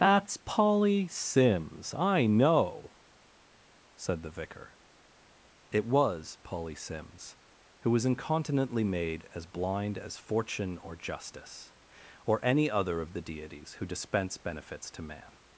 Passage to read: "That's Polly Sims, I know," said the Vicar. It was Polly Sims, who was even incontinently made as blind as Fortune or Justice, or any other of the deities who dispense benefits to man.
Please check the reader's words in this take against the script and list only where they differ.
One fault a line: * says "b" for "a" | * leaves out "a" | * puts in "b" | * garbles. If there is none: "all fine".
* leaves out "even"